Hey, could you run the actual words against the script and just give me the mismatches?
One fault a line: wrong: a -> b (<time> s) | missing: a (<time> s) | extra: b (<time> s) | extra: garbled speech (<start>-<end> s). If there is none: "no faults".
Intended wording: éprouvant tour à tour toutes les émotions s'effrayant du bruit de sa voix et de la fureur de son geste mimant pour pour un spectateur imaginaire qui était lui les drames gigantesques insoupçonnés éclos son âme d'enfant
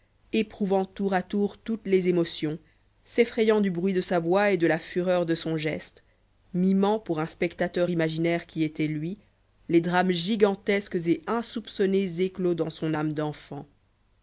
missing: pour (7.2 s)
extra: et (11.1 s)
extra: dans (12.5 s)